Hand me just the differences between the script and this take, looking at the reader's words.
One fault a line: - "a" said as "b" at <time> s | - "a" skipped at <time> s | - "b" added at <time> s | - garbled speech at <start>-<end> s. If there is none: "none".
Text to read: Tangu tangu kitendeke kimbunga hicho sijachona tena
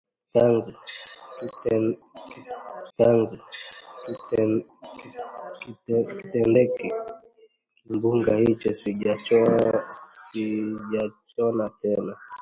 none